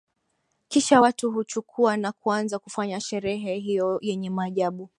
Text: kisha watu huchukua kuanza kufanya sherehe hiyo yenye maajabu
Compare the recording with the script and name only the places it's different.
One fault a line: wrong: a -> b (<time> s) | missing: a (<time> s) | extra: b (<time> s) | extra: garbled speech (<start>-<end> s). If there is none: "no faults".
extra: na (2.0 s)